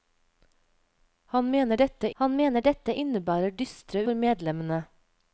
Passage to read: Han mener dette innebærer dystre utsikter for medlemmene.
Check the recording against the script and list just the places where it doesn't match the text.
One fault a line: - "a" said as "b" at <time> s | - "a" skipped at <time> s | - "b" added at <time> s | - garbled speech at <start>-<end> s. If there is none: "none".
- "han mener dette" added at 2.2 s
- "utsikter" skipped at 4.0 s